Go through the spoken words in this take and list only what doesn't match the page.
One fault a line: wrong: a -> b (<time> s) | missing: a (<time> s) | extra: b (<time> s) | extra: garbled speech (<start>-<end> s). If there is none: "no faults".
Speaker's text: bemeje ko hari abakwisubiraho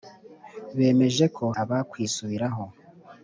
missing: hari (1.4 s)